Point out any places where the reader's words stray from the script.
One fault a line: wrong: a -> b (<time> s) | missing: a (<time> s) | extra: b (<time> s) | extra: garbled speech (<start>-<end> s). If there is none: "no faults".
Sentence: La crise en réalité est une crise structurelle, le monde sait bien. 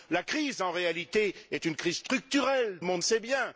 no faults